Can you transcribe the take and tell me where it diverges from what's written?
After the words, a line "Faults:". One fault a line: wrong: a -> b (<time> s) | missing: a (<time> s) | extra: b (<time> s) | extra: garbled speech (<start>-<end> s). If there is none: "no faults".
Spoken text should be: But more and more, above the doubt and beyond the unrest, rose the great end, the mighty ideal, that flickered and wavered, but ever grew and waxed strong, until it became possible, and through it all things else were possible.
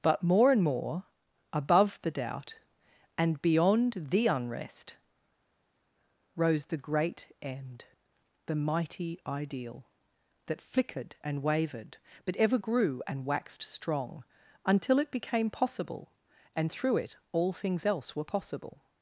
But more and more, above the doubt and beyond the unrest, rose the great end, the mighty ideal, that flickered and wavered, but ever grew and waxed strong, until it became possible, and through it all things else were possible.
Faults:
no faults